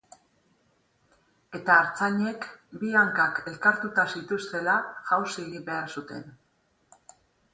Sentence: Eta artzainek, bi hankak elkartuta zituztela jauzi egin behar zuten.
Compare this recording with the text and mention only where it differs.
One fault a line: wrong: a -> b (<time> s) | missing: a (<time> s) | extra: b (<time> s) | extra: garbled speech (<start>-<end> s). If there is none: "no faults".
no faults